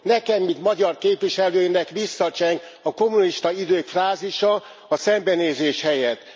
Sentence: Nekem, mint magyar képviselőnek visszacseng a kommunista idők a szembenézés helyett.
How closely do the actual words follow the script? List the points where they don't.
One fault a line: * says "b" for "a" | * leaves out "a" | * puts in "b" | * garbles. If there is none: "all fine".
* puts in "frázisa"